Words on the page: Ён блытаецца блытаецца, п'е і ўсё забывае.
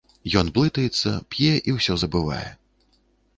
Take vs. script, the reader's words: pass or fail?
fail